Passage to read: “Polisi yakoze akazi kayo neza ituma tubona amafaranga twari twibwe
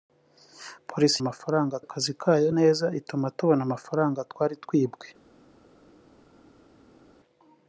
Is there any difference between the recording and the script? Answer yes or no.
yes